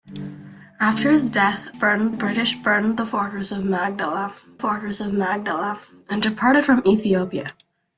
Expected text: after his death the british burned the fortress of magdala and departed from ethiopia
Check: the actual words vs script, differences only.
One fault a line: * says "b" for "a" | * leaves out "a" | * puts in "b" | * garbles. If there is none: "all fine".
* says "burned" for "the"
* puts in "fortress of magdala"